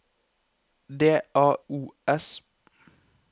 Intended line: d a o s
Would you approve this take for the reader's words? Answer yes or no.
yes